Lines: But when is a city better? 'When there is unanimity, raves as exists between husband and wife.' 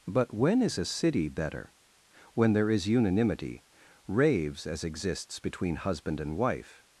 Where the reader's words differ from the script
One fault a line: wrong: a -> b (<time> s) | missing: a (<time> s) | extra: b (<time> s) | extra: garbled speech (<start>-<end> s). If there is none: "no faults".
no faults